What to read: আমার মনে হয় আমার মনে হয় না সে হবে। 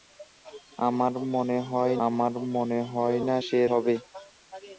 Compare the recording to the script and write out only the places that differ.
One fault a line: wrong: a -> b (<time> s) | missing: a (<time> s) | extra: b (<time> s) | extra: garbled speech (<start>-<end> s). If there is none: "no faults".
no faults